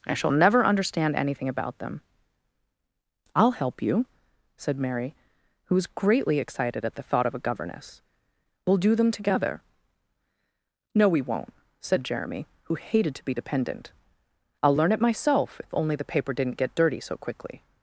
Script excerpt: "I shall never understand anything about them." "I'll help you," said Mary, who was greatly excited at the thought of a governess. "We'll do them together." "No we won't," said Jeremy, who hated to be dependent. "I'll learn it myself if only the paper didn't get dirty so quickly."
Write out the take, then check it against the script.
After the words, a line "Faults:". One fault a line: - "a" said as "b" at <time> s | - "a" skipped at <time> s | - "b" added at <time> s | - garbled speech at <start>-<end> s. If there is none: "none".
"I shall never understand anything about them." "I'll help you," said Mary, who was greatly excited at the thought of a governess. "We'll do them together." "No we won't," said Jeremy, who hated to be dependent. "I'll learn it myself if only the paper didn't get dirty so quickly."
Faults:
none